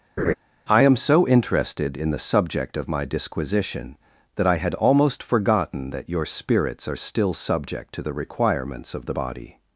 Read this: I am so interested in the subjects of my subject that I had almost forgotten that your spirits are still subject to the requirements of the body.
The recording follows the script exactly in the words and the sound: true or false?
false